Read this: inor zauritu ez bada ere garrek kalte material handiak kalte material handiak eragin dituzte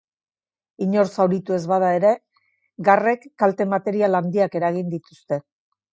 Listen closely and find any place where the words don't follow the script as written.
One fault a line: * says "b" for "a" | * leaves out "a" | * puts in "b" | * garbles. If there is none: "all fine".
* leaves out "kalte material handiak"